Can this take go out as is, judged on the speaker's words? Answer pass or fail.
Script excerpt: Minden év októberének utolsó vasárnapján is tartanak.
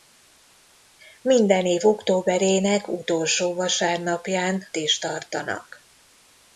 pass